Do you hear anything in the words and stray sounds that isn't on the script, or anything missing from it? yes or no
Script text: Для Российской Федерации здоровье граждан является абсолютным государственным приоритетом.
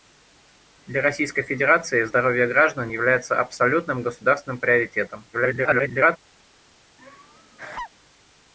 yes